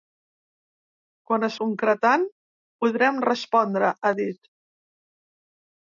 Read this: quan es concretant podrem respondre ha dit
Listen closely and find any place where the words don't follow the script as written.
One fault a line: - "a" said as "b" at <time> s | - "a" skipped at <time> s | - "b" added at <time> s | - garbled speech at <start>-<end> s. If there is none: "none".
none